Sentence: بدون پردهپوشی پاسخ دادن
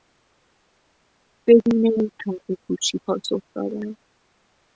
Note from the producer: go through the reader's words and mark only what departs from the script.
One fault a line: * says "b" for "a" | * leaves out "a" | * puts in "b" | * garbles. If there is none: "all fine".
all fine